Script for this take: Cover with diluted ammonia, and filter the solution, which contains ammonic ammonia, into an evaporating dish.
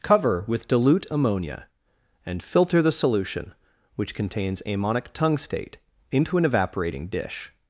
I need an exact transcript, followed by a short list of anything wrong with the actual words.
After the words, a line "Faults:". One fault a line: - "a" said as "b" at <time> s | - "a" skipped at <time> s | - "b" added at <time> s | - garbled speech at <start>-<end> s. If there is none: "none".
Cover with dilute ammonia, and filter the solution, which contains ammonic tungstate, into an evaporating dish.
Faults:
- "diluted" said as "dilute" at 0.7 s
- "ammonia" said as "tungstate" at 5.1 s